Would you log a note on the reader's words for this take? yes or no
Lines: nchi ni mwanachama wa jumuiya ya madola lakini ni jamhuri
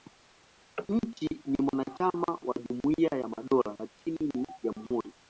no